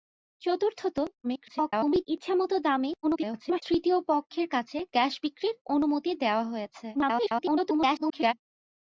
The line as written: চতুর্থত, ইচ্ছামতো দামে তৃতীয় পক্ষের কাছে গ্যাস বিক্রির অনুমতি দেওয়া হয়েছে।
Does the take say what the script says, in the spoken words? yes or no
no